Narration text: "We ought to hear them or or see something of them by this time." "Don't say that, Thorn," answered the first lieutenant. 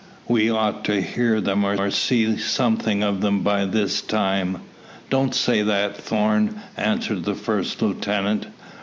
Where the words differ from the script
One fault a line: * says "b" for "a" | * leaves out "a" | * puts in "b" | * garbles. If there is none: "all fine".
all fine